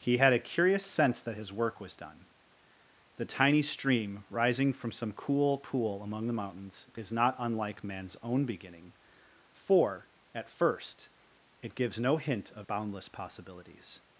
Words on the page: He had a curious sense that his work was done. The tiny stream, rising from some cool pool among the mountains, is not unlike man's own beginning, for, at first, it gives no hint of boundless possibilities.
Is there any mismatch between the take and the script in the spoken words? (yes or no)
no